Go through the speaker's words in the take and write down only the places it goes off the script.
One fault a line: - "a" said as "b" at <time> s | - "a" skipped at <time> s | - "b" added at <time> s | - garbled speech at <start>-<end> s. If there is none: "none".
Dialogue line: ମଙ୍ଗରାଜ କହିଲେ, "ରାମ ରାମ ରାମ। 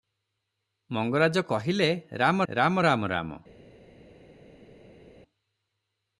- "ରାମ" added at 3.1 s